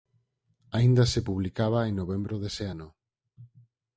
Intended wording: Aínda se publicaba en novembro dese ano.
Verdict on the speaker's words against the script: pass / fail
pass